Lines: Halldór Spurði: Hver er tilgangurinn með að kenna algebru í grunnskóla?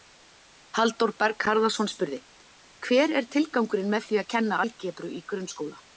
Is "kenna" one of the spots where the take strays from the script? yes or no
no